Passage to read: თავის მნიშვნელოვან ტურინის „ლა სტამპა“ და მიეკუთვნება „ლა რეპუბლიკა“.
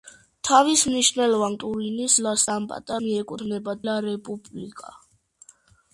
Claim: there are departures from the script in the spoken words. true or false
false